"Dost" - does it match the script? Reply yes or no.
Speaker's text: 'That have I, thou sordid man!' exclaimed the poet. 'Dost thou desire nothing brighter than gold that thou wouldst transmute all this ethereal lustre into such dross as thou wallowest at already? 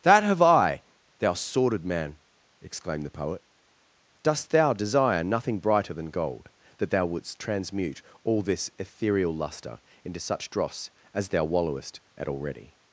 yes